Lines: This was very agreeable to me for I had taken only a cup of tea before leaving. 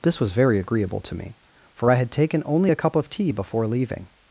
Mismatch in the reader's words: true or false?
false